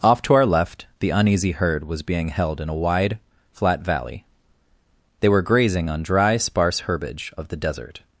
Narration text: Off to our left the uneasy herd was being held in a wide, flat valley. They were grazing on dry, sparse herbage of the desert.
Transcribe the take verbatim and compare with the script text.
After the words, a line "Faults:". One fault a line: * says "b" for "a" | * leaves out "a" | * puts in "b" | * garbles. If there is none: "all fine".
Off to our left the uneasy herd was being held in a wide, flat valley. They were grazing on dry, sparse herbage of the desert.
Faults:
all fine